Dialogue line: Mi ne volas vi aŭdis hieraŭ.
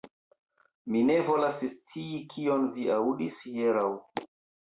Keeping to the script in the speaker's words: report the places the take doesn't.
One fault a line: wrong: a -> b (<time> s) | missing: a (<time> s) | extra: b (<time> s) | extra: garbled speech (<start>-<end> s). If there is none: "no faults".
extra: scii kion (1.7 s)